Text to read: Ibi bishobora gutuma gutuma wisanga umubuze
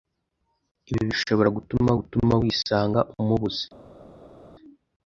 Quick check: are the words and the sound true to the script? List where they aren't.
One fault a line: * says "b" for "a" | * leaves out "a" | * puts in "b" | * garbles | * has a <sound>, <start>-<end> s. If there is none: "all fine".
all fine